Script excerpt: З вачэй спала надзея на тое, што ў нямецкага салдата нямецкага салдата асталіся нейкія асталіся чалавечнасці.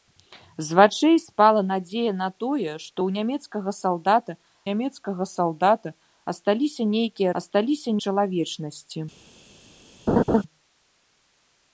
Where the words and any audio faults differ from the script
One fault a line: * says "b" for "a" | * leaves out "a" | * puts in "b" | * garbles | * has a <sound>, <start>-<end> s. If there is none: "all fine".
* has a laugh, 10.1-10.4 s